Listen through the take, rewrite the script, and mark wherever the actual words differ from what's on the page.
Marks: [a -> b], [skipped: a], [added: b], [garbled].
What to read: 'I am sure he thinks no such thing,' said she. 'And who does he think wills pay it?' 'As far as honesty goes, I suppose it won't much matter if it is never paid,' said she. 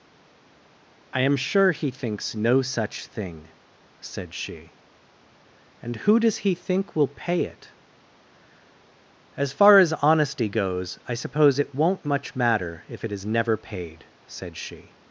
'I am sure he thinks no such thing,' said she. 'And who does he think [wills -> will] pay it?' 'As far as honesty goes, I suppose it won't much matter if it is never paid,' said she.